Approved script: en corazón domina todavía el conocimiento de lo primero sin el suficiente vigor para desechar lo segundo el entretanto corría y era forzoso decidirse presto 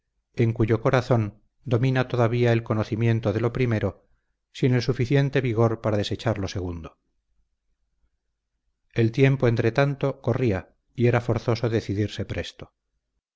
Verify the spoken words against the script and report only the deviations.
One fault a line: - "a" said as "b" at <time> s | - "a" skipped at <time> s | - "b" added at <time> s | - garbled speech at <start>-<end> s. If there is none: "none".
- "cuyo" added at 0.5 s
- "tiempo" added at 9.1 s